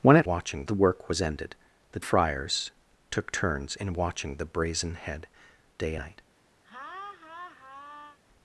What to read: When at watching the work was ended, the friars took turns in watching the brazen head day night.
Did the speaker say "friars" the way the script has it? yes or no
yes